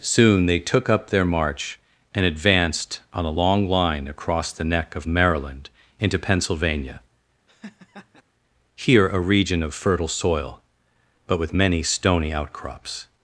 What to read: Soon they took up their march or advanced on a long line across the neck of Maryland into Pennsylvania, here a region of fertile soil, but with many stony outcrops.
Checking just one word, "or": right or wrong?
wrong